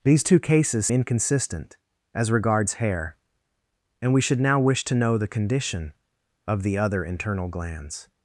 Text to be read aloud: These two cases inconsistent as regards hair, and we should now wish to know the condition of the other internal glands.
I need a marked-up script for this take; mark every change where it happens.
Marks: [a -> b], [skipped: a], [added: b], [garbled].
These two cases inconsistent as regards hair, and we should now wish to know the condition of the other internal glands.